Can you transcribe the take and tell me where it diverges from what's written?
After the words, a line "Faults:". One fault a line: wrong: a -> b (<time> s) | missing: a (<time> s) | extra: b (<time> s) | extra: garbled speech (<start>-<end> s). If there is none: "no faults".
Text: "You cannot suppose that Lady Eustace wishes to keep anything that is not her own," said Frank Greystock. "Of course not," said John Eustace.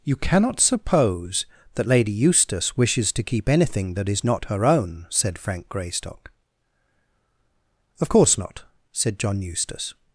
"You cannot suppose that Lady Eustace wishes to keep anything that is not her own," said Frank Greystock. "Of course not," said John Eustace.
Faults:
no faults